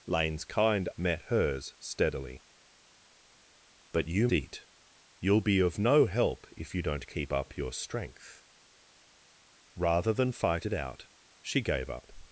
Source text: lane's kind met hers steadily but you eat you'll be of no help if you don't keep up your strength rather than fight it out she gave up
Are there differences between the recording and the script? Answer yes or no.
no